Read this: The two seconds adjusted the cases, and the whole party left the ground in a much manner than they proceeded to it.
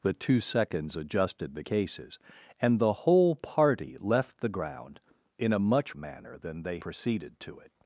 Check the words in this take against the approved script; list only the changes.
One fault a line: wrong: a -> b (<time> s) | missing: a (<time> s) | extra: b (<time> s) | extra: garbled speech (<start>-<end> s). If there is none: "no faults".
no faults